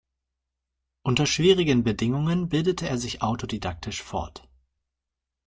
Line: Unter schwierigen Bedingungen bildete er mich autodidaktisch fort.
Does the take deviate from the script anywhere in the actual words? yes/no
yes